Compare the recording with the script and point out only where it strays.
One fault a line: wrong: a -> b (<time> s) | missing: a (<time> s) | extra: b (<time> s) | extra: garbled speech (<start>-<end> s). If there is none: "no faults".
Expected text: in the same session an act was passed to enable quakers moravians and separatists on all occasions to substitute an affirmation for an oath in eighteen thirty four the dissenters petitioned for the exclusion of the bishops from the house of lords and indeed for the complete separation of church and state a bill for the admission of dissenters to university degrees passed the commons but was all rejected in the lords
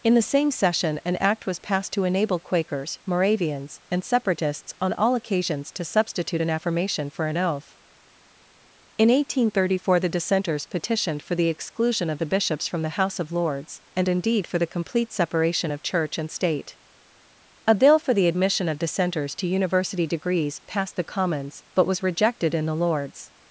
missing: all (22.0 s)